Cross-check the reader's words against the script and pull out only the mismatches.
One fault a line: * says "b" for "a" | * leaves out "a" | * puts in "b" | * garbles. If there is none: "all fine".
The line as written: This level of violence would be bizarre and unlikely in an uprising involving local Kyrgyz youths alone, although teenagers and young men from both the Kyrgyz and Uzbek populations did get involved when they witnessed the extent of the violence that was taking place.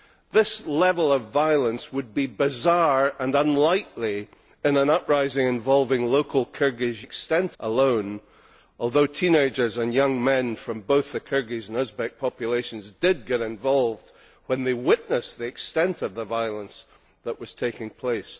* says "extent" for "youths"